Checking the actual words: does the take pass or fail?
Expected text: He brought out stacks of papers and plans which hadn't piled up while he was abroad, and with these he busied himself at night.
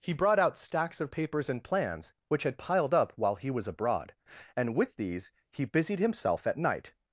fail